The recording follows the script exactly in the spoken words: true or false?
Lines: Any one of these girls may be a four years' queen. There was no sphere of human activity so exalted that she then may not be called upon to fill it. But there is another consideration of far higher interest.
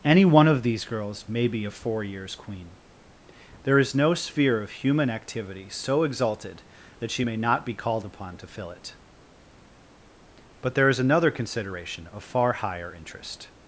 false